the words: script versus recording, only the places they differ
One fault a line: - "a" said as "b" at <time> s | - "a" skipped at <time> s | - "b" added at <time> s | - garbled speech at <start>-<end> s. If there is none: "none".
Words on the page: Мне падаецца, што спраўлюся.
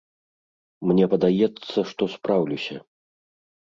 none